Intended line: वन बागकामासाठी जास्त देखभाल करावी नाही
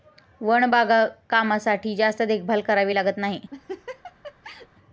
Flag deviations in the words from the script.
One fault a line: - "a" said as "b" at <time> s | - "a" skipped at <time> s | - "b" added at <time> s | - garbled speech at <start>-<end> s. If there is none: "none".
- "लागत" added at 2.9 s